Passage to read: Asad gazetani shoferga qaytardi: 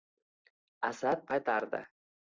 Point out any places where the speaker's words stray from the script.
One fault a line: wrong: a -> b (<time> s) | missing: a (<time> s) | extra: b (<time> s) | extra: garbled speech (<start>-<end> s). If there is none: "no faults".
missing: gazetani shoferga (1.3 s)